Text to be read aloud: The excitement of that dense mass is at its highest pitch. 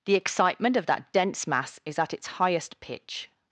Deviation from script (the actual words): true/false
false